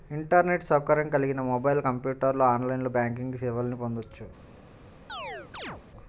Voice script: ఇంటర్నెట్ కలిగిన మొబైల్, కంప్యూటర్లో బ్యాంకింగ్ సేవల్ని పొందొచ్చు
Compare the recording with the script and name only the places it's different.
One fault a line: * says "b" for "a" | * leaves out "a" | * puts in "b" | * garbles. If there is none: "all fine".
* puts in "సౌకర్యం"
* puts in "ఆన్లైన్"